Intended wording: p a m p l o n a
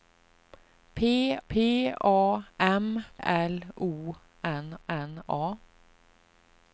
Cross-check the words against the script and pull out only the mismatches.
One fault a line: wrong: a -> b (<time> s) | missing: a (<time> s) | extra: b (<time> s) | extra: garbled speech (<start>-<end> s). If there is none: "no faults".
extra: p (1.5 s)
missing: p (3.0 s)
extra: n (4.9 s)